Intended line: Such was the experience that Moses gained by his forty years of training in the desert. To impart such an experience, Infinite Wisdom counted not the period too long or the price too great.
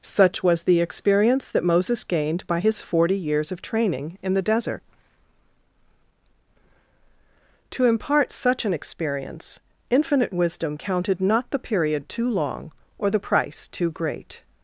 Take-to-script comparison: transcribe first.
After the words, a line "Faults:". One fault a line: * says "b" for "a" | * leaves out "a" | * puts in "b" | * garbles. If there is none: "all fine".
Such was the experience that Moses gained by his forty years of training in the desert. To impart such an experience, Infinite Wisdom counted not the period too long or the price too great.
Faults:
all fine